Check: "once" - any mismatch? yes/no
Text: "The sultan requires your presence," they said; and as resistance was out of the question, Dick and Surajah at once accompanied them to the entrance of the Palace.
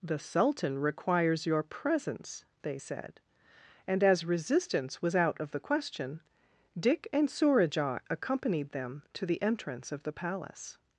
yes